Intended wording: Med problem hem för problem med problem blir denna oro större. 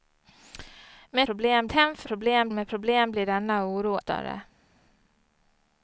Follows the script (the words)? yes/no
yes